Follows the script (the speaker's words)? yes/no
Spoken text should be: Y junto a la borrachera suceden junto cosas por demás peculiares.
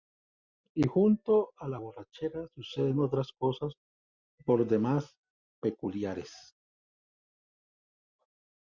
no